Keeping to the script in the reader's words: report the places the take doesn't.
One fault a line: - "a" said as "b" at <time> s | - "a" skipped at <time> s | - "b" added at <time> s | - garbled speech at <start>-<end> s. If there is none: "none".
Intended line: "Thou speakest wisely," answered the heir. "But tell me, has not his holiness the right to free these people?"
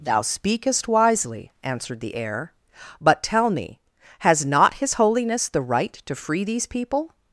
none